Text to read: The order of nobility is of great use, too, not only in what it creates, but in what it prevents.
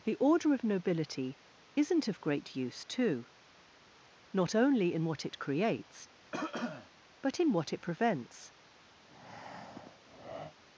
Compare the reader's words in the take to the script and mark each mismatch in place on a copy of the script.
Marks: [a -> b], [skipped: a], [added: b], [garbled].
The order of nobility [is -> isn't] of great use, too, not only in what it creates, but in what it prevents.